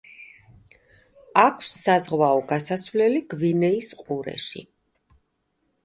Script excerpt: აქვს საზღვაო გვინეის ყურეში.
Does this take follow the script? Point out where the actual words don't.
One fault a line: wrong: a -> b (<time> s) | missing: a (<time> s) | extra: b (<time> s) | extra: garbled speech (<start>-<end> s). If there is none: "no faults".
extra: გასასვლელი (2.5 s)